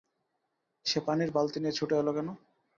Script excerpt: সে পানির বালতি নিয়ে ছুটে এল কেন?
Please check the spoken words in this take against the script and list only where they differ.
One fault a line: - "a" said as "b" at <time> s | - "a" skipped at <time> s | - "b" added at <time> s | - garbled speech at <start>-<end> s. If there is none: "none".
none